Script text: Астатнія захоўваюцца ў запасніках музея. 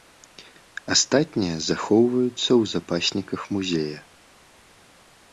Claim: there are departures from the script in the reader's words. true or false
false